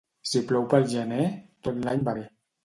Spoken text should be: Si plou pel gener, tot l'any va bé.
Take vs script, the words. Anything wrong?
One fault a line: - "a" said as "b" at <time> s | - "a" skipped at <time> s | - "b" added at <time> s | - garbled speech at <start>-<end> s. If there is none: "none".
none